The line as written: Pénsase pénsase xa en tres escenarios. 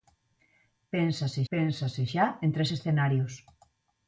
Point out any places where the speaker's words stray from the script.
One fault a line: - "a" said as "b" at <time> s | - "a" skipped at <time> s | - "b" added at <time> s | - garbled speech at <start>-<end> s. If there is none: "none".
none